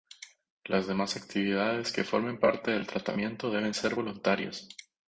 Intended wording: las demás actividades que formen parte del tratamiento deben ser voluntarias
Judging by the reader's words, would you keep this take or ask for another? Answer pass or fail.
pass